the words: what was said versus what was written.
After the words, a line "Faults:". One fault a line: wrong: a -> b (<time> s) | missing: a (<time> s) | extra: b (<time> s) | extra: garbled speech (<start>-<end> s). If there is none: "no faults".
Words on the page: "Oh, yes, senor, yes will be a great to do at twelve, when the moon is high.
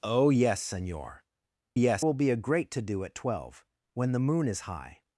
"Oh, yes, senor, yes will be a great to do at twelve, when the moon is high.
Faults:
no faults